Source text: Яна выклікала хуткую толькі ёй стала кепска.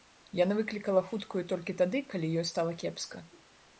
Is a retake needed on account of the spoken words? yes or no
yes